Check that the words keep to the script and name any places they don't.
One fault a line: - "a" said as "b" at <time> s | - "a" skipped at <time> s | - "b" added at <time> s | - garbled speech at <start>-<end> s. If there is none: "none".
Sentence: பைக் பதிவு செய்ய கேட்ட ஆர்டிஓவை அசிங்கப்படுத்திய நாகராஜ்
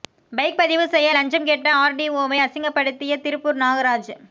- "லஞ்சம்" added at 1.1 s
- "திருப்பூர்" added at 3.2 s